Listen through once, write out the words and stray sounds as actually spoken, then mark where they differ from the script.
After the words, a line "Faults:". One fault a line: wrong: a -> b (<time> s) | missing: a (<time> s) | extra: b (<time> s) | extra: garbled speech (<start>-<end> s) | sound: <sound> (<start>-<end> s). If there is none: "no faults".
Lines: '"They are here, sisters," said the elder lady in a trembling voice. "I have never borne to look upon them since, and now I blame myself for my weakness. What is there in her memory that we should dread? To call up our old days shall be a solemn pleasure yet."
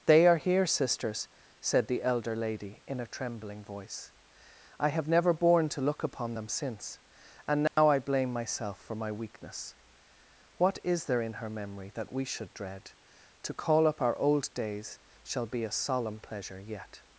'"They are here, sisters," said the elder lady in a trembling voice. "I have never borne to look upon them since, and now I blame myself for my weakness. What is there in her memory that we should dread? To call up our old days shall be a solemn pleasure yet."
Faults:
sound: dropout (7.7-7.8 s)